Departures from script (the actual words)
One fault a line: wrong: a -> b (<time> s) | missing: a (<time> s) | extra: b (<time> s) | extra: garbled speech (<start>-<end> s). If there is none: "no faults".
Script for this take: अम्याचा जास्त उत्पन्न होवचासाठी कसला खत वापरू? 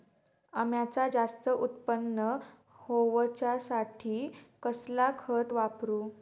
no faults